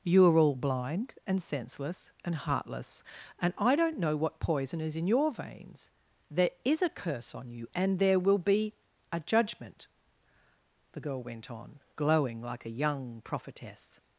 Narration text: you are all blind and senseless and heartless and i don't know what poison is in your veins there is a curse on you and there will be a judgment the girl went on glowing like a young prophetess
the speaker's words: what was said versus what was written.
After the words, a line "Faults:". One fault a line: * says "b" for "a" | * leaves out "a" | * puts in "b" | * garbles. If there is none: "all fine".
you are all blind and senseless and heartless and i don't know what poison is in your veins there is a curse on you and there will be a judgment the girl went on glowing like a young prophetess
Faults:
all fine